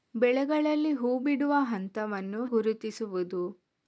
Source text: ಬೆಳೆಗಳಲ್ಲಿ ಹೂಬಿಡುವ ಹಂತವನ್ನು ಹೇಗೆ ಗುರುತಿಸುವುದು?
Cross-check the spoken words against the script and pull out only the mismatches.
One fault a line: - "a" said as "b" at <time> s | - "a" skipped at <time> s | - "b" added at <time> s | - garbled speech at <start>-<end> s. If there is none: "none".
- "ಹೇಗೆ" skipped at 2.5 s